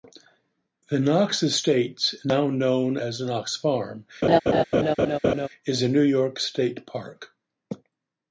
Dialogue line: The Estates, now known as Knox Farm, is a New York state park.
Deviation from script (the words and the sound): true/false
true